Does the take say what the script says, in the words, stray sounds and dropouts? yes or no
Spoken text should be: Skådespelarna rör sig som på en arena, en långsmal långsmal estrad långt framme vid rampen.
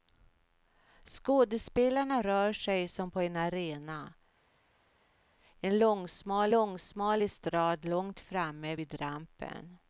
yes